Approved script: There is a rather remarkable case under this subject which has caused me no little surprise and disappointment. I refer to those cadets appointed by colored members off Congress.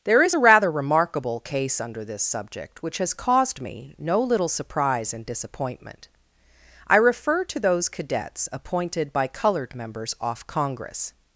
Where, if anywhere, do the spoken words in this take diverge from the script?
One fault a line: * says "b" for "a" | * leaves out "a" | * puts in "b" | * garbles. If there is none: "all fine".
all fine